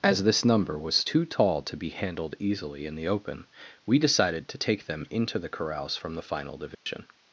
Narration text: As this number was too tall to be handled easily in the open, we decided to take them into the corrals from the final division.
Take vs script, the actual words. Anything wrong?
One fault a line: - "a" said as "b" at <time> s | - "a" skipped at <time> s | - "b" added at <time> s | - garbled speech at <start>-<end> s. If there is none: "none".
none